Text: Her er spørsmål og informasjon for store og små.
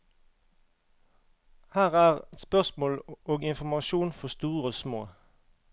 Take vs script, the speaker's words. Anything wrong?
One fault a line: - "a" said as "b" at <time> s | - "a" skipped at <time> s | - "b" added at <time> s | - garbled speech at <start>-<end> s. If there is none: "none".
none